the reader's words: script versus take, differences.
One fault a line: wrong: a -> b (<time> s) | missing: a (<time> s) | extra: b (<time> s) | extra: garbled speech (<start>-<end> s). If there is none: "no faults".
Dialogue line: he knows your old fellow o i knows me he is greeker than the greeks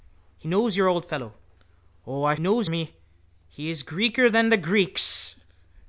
no faults